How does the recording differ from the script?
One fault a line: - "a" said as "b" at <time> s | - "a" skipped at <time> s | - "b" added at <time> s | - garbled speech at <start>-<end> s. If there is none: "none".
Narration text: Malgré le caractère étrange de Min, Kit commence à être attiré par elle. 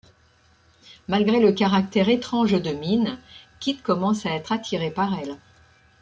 none